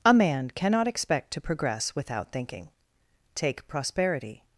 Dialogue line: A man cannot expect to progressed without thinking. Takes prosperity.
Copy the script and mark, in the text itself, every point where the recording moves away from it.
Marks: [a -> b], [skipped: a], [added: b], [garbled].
A man cannot expect to [progressed -> progress] without thinking. [Takes -> Take] prosperity.